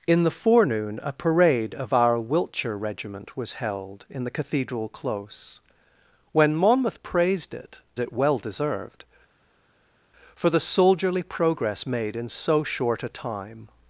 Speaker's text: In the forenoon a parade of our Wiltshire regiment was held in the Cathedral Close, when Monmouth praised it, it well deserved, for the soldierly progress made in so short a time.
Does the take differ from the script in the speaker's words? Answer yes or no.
no